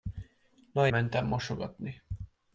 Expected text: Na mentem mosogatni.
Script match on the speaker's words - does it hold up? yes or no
yes